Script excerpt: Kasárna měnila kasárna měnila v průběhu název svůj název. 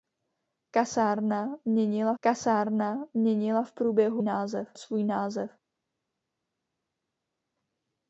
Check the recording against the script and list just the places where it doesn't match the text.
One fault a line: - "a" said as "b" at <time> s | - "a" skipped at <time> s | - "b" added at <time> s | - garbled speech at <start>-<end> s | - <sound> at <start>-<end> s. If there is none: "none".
none